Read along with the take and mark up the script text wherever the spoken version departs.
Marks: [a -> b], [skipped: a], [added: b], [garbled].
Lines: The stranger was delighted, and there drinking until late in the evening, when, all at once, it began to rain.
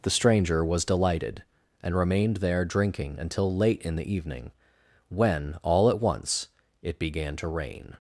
The stranger was delighted, and [added: remained] there drinking until late in the evening, when, all at once, it began to rain.